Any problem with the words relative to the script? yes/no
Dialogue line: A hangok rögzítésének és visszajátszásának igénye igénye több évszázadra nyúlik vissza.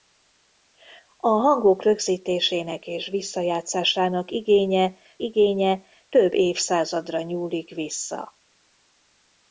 no